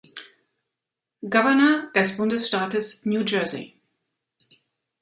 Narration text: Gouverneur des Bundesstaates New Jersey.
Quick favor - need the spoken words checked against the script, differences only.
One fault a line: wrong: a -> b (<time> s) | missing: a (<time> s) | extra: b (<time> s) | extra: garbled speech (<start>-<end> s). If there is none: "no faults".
no faults